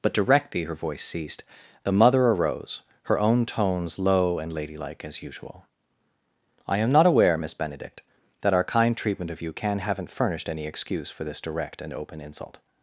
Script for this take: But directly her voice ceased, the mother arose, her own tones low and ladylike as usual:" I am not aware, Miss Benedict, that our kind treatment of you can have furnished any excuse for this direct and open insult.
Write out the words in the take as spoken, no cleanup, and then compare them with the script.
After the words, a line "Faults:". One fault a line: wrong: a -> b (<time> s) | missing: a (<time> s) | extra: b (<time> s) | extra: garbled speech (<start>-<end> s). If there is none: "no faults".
But directly her voice ceased, the mother arose, her own tones low and ladylike as usual:" I am not aware, Miss Benedict, that our kind treatment of you can haven't furnished any excuse for this direct and open insult.
Faults:
wrong: have -> haven't (9.8 s)